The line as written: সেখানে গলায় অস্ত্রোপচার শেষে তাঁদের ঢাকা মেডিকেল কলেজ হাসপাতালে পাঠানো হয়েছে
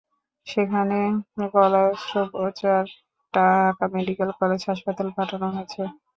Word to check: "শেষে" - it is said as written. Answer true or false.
false